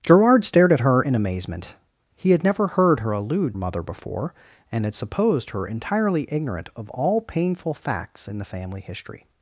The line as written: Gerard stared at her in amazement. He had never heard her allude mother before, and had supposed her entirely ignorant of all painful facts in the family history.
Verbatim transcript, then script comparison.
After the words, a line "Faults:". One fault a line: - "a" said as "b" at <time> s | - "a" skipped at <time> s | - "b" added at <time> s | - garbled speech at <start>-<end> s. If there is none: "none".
Gerard stared at her in amazement. He had never heard her allude mother before, and had supposed her entirely ignorant of all painful facts in the family history.
Faults:
none